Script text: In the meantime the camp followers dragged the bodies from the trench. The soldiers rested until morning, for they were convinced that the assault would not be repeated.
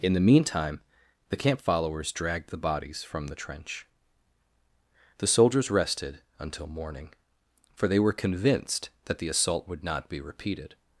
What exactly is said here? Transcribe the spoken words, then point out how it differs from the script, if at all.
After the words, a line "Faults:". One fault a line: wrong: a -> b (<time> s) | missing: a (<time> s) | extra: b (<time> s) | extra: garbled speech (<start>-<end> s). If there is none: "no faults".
In the meantime the camp followers dragged the bodies from the trench. The soldiers rested until morning, for they were convinced that the assault would not be repeated.
Faults:
no faults